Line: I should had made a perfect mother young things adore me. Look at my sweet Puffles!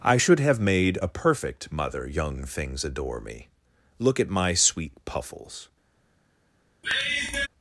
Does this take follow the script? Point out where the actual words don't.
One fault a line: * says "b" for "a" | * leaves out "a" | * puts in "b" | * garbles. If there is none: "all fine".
* says "have" for "had"